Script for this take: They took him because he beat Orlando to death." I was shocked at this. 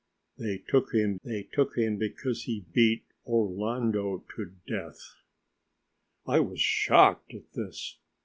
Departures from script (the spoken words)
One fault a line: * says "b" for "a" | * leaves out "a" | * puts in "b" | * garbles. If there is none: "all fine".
* puts in "they took him"